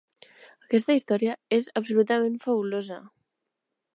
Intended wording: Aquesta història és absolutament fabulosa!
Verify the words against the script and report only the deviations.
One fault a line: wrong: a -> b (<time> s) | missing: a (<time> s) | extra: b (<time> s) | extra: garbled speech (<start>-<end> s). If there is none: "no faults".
no faults